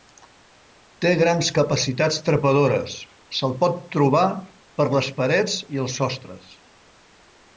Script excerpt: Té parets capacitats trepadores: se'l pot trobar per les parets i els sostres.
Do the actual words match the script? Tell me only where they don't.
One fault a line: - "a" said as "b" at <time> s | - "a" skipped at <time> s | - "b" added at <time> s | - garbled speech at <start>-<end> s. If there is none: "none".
- "parets" said as "grans" at 1.2 s